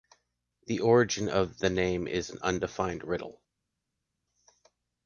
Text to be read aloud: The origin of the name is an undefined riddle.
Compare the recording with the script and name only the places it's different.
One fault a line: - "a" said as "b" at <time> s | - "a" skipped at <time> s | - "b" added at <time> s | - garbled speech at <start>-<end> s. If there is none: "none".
none